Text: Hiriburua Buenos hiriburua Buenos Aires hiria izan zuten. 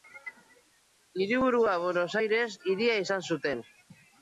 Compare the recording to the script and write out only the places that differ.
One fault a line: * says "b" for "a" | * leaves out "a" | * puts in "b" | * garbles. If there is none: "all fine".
* leaves out "hiriburua Buenos"